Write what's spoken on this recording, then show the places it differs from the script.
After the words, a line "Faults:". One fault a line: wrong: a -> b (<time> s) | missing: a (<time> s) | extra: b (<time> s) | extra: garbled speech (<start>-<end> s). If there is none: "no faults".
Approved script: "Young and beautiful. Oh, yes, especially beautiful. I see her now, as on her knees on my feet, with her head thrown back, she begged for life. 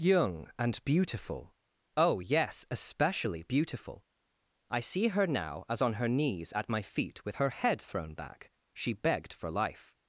"Young and beautiful. Oh, yes, especially beautiful. I see her now, as on her knees at my feet, with her head thrown back, she begged for life.
Faults:
wrong: on -> at (6.5 s)